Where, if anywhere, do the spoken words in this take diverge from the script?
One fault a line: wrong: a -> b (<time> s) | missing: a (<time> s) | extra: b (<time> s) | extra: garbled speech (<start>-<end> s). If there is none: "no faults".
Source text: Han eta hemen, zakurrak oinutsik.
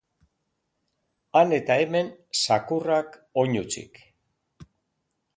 no faults